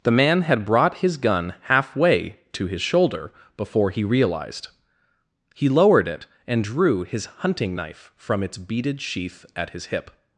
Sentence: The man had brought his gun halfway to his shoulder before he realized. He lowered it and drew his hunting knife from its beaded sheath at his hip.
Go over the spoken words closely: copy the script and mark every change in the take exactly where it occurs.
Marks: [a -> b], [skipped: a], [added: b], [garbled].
The man had brought his gun halfway to his shoulder before he realized. He lowered it and drew his hunting knife from its beaded sheath at his hip.